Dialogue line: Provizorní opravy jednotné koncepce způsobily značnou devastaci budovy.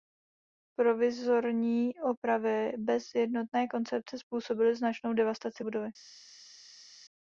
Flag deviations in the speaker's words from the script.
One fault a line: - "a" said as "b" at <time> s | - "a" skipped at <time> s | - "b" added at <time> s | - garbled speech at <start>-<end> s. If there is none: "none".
- "bez" added at 2.8 s